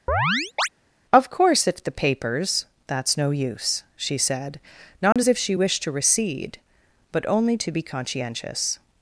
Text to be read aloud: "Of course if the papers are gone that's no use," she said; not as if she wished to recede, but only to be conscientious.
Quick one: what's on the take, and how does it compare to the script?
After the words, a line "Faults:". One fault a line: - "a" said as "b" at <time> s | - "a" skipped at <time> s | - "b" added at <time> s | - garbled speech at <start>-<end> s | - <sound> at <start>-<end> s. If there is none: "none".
"Of course if the papers that's no use," she said; not as if she wished to recede, but only to be conscientious.
Faults:
- chirp at 0.1-0.7 s
- "are gone" skipped at 2.7 s
- dropout at 5.1-5.2 s